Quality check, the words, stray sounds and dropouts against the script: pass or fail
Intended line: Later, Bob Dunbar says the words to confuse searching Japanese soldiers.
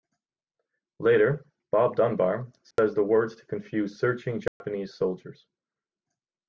fail